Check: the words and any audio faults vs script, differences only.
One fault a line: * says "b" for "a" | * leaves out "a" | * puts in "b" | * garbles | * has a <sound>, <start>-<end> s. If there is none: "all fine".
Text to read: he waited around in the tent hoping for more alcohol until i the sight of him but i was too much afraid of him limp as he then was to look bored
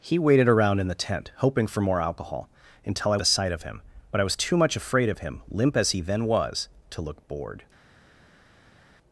all fine